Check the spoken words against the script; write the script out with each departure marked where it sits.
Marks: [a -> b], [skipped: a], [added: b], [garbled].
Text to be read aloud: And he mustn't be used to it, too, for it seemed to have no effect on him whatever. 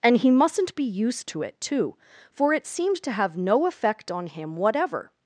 And he mustn't be used to it, too, for it seemed to have no effect on him whatever.